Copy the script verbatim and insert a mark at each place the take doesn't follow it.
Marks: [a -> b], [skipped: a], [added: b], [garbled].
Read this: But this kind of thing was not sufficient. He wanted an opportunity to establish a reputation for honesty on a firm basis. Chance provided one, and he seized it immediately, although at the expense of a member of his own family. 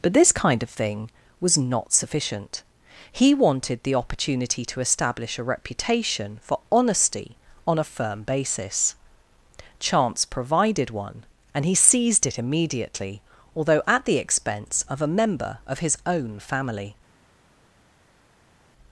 But this kind of thing was not sufficient. He wanted [an -> the] opportunity to establish a reputation for honesty on a firm basis. Chance provided one, and he seized it immediately, although at the expense of a member of his own family.